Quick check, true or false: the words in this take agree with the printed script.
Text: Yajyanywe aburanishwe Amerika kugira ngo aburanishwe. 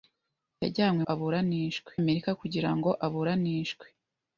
true